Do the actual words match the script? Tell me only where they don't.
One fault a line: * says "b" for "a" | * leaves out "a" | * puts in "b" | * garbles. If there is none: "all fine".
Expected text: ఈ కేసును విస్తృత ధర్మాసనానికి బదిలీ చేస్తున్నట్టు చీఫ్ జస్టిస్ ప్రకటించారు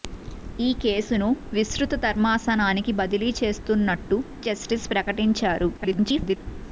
* leaves out "చీఫ్"
* garbles